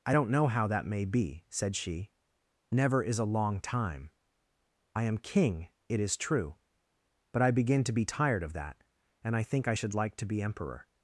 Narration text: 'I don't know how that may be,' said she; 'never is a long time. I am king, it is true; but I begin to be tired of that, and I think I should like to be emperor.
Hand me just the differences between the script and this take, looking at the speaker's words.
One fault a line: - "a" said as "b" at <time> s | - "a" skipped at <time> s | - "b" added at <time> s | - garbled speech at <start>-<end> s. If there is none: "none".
none